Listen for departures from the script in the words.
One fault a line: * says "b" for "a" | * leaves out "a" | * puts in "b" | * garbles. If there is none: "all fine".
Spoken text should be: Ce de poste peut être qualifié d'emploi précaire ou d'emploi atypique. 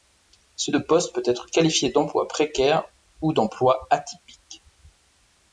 all fine